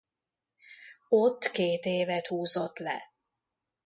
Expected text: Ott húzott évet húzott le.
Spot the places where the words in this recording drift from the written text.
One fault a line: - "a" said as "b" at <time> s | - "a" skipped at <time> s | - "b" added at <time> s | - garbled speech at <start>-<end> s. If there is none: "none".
- "húzott" said as "két" at 1.5 s